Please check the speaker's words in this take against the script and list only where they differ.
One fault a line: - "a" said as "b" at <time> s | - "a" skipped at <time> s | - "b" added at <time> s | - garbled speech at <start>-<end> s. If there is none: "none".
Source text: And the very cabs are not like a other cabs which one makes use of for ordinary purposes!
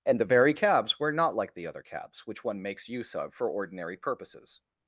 - "are" said as "were" at 1.0 s
- "a" said as "the" at 1.5 s